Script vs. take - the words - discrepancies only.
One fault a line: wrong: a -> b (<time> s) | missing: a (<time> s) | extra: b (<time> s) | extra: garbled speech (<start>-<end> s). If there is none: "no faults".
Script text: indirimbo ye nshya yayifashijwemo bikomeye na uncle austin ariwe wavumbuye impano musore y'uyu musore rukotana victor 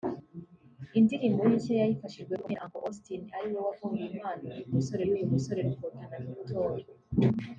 no faults